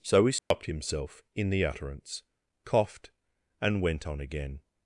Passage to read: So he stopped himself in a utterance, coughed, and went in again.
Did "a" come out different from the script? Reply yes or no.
yes